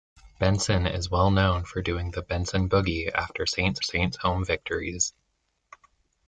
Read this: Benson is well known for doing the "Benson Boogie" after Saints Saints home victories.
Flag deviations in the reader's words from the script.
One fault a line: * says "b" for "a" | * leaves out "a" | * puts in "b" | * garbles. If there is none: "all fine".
all fine